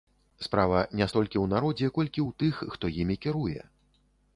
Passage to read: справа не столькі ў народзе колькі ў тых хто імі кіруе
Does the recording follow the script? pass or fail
pass